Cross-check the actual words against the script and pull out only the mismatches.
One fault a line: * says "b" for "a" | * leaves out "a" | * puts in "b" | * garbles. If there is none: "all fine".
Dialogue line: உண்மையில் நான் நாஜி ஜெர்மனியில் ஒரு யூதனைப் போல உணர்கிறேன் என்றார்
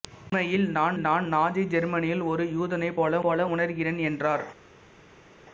* puts in "நான்"
* puts in "போல"